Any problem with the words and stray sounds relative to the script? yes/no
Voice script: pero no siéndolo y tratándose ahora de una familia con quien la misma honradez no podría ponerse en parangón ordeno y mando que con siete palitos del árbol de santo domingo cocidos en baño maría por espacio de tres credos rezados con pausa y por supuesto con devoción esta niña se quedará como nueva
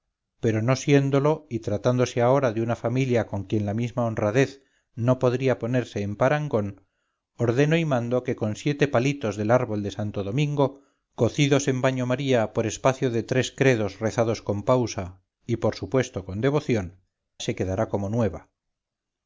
yes